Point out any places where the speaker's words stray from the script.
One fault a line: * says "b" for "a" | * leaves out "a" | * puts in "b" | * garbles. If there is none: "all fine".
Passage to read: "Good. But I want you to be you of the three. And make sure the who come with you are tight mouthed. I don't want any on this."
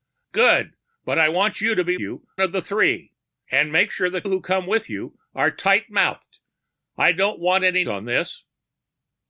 all fine